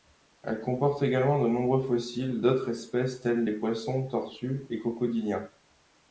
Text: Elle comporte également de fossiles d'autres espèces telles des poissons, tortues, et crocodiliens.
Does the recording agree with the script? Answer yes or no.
no